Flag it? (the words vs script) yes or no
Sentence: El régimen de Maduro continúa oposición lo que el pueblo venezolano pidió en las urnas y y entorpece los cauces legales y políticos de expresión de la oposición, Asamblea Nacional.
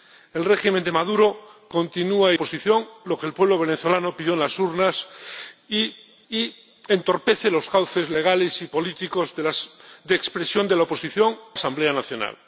no